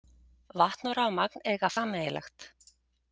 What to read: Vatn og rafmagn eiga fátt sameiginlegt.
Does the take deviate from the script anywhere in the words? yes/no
yes